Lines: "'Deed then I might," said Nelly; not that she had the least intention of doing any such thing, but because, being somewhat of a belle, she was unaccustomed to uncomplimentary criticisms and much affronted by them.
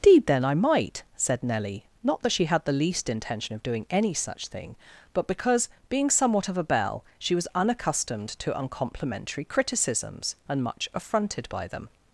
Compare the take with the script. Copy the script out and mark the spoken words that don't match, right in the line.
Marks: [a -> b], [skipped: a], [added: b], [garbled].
"'Deed then I might," said Nelly; not that she had the least intention of doing any such thing, but because, being somewhat of a belle, she was unaccustomed to uncomplimentary criticisms and much affronted by them.